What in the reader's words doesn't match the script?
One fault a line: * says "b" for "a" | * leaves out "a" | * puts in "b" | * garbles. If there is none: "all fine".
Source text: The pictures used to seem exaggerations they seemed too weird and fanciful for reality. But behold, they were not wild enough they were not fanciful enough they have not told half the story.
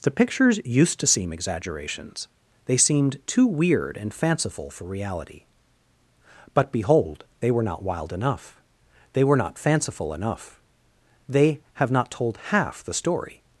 all fine